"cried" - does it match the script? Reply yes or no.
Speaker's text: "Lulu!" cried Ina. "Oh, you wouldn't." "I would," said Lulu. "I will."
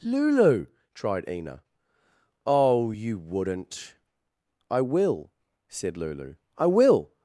no